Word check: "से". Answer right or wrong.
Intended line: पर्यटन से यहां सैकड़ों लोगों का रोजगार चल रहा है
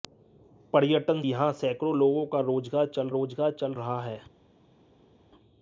wrong